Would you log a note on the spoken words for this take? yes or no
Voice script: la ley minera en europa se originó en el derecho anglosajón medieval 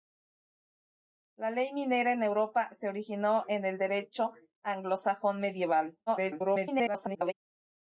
yes